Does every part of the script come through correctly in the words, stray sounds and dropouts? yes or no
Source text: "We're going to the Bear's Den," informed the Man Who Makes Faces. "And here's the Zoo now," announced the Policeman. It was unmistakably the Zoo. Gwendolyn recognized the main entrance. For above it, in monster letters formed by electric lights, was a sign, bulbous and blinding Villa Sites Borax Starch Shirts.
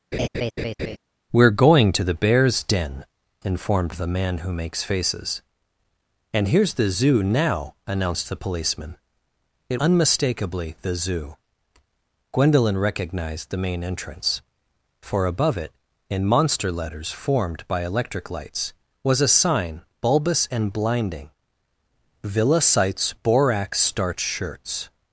no